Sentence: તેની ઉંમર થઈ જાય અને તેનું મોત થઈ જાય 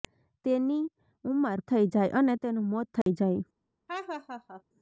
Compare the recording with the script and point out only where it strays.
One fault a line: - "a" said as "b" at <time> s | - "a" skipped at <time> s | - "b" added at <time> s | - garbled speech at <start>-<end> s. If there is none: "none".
none